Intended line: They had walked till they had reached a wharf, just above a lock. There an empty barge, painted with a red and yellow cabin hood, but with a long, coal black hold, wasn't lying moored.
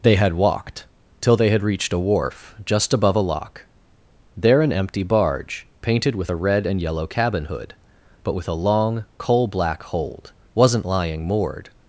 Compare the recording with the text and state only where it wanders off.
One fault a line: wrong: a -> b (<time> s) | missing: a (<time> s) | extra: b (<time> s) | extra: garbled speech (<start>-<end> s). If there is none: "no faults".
no faults